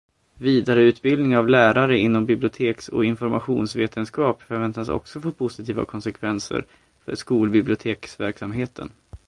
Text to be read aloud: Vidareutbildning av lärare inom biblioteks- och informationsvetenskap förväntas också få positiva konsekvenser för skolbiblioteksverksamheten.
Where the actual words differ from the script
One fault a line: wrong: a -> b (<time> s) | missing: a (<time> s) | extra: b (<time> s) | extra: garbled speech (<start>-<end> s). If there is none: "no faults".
no faults